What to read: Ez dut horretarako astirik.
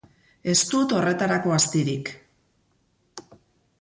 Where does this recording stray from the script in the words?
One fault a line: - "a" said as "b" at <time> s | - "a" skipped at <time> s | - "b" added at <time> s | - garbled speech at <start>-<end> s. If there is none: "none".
none